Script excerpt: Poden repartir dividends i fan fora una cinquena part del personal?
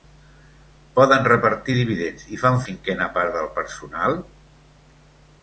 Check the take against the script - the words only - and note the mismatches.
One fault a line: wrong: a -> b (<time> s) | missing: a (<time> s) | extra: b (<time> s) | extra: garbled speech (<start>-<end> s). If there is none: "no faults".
missing: fora una (2.6 s)